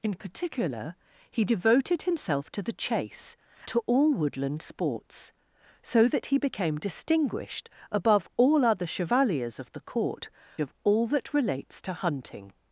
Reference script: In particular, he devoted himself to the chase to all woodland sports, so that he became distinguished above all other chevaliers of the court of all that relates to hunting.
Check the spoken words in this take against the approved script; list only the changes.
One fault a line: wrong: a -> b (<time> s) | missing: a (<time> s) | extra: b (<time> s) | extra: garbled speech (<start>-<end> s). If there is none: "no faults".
no faults